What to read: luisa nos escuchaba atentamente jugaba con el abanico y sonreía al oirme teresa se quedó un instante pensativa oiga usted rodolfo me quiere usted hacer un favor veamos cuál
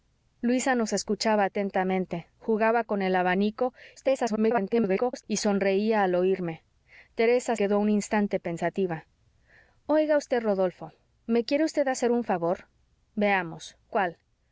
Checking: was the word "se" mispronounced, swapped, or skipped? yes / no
yes